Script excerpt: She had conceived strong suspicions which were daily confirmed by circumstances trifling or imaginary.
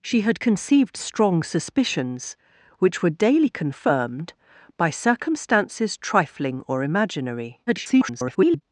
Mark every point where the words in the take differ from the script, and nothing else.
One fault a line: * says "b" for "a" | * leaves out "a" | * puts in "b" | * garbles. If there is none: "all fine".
* garbles